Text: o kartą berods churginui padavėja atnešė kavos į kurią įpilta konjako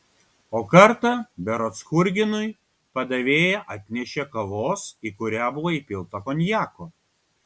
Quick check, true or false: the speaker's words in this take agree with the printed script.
false